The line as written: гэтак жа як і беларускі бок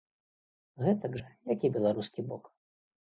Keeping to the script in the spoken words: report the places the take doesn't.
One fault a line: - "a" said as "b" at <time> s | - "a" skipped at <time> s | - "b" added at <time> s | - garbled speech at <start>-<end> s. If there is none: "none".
none